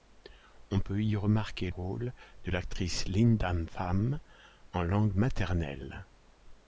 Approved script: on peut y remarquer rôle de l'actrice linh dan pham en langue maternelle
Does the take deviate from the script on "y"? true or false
false